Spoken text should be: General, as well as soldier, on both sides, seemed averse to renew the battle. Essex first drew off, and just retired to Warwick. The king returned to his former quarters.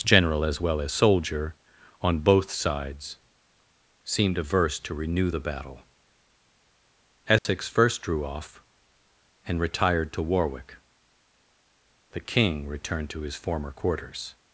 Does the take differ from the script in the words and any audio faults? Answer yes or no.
yes